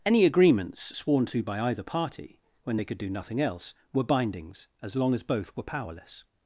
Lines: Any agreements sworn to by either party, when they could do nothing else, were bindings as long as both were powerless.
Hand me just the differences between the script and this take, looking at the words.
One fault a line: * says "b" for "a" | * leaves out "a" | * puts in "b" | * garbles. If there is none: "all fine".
all fine